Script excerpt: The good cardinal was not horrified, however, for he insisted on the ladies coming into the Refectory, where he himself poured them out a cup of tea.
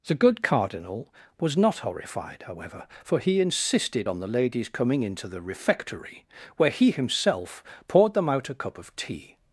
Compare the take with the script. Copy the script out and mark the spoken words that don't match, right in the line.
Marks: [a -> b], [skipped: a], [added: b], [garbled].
The good cardinal was not horrified, however, for he insisted on the ladies coming into the Refectory, where he himself poured them out a cup of tea.